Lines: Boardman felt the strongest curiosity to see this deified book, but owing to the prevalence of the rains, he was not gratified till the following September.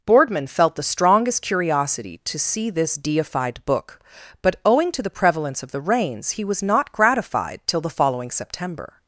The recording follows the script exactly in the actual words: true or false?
true